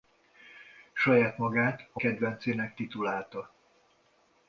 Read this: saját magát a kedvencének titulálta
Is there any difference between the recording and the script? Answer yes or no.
no